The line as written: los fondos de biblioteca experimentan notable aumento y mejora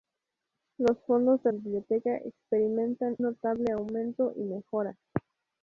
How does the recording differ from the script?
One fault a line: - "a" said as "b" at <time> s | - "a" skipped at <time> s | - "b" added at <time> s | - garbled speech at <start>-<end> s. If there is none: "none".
none